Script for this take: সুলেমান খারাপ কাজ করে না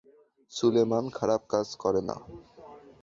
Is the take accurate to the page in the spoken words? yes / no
yes